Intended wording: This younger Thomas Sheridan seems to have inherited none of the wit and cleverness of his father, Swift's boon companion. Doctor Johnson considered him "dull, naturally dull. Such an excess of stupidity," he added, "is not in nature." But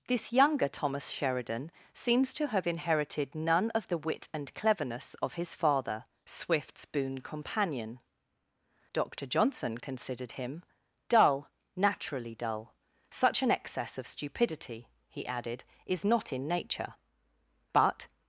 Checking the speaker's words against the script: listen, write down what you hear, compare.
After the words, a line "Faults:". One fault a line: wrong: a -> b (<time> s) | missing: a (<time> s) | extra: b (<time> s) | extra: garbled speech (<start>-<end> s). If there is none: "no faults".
This younger Thomas Sheridan seems to have inherited none of the wit and cleverness of his father, Swift's boon companion. Doctor Johnson considered him "dull, naturally dull. Such an excess of stupidity," he added, "is not in nature." But
Faults:
no faults